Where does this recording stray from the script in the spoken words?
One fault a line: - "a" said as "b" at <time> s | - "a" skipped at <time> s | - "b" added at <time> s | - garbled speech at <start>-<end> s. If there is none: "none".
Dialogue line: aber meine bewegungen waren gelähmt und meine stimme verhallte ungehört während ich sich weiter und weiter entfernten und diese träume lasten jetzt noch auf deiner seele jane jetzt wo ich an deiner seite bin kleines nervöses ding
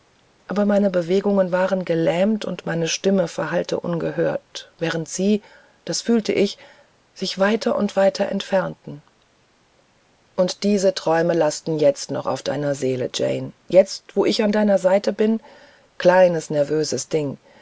- "sie das fühlte" added at 5.1 s